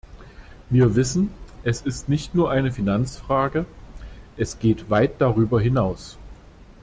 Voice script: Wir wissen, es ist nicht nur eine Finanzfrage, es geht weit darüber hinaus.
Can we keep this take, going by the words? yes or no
yes